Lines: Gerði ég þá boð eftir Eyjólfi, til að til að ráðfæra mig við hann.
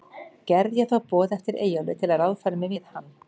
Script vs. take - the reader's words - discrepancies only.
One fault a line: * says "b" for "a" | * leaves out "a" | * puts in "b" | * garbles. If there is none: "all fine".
* leaves out "til að"